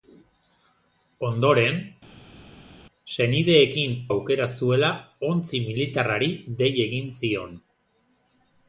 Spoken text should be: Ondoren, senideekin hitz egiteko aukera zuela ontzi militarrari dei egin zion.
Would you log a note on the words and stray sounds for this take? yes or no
yes